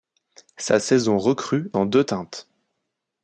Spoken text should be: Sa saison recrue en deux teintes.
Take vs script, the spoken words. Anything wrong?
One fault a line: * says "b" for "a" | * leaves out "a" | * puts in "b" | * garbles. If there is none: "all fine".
all fine